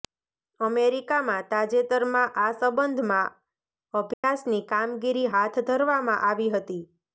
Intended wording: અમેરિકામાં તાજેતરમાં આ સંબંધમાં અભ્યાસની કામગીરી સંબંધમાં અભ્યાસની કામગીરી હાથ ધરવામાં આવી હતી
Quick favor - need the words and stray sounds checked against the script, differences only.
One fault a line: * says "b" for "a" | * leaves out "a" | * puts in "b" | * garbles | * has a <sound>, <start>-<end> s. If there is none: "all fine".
* has a dropout, 4.1-4.2 s
* leaves out "સંબંધમાં અભ્યાસની કામગીરી"